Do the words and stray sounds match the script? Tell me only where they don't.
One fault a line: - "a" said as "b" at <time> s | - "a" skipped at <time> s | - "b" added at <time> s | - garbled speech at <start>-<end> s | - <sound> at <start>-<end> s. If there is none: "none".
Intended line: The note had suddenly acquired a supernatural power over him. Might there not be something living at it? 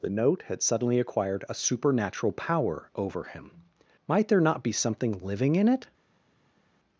- "at" said as "in" at 5.6 s